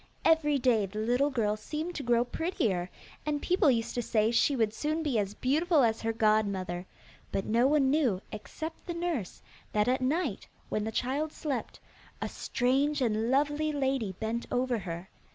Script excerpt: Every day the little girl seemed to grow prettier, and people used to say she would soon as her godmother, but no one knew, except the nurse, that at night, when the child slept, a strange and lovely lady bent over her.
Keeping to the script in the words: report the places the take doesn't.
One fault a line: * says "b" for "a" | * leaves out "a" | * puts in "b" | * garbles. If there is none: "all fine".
* puts in "be as beautiful"